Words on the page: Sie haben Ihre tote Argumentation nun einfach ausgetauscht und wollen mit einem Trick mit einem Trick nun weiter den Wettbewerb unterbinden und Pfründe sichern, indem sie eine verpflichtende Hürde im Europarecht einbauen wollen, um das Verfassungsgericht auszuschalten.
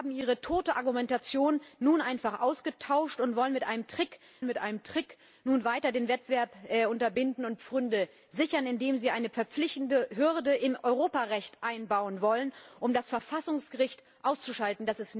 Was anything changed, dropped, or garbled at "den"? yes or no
no